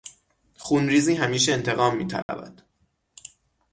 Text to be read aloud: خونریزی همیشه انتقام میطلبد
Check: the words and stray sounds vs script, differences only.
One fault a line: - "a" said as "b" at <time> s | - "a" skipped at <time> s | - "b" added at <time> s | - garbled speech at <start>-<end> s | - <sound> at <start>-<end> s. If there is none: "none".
- dropout at 2.2-2.3 s